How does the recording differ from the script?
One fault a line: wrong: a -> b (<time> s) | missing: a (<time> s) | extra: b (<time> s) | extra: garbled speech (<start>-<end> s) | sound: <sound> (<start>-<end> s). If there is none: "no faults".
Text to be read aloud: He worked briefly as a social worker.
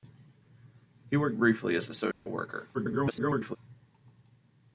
sound: dropout (2.1-2.3 s)
extra: garbled speech (2.7-3.6 s)